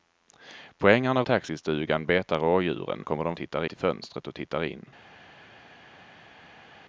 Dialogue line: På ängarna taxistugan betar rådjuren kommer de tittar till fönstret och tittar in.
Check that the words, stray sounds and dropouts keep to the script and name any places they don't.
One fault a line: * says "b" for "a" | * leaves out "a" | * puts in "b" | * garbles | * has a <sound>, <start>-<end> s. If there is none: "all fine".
all fine